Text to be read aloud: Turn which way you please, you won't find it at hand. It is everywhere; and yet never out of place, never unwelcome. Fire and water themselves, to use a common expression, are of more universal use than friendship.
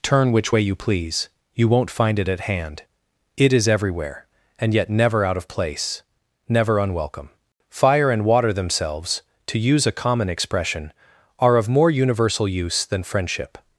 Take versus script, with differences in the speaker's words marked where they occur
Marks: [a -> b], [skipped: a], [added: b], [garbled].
Turn which way you please, you won't find it at hand. It is everywhere; and yet never out of place, never unwelcome. Fire and water themselves, to use a common expression, are of more universal use than friendship.